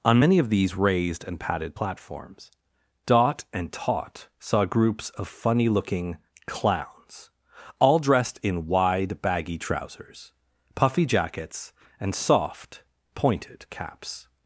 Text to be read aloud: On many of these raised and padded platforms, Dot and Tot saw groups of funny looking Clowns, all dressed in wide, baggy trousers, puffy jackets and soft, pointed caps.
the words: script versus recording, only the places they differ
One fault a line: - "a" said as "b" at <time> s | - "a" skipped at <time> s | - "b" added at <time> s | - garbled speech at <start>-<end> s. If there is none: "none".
none